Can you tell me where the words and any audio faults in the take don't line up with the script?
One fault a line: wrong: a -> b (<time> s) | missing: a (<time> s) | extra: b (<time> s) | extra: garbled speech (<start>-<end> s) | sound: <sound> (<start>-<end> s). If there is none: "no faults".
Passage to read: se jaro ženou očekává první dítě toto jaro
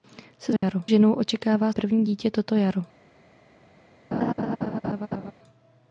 sound: dropout (0.6-0.6 s)
sound: laugh (4.1-5.3 s)